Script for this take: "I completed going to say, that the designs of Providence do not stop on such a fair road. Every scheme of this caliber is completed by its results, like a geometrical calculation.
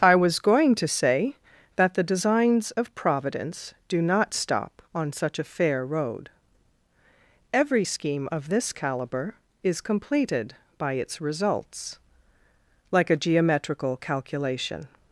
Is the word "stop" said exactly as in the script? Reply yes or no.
yes